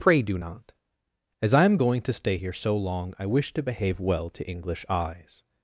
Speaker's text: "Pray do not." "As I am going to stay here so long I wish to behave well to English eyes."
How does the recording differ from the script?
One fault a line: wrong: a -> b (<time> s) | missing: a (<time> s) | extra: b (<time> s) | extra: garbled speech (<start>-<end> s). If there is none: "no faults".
no faults